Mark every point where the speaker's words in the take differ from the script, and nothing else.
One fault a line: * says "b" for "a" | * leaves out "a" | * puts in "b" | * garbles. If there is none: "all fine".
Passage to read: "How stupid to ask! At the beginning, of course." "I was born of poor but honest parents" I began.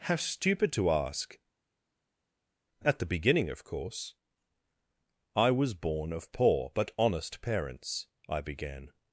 all fine